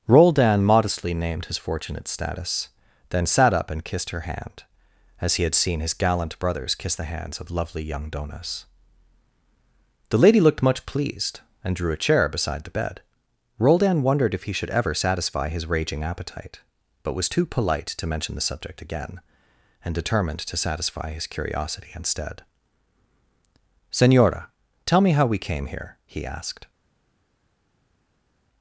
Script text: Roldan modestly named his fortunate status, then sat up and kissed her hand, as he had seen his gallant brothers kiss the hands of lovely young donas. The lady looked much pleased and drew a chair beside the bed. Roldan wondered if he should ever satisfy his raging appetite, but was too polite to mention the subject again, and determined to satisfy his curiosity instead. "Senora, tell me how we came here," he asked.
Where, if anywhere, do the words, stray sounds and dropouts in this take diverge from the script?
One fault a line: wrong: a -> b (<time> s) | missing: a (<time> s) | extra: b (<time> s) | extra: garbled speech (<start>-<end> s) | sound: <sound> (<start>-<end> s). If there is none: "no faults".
no faults